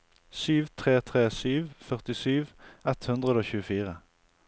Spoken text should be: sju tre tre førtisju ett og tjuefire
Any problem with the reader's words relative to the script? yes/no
yes